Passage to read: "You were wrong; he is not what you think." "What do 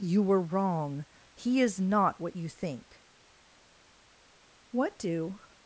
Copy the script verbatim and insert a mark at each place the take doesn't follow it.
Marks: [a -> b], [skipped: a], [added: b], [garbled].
"You were wrong; he is not what you think." "What do